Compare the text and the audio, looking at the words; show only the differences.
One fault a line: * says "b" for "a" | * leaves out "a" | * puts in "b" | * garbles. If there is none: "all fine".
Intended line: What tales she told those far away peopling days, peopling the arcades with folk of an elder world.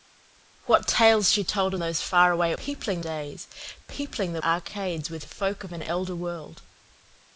all fine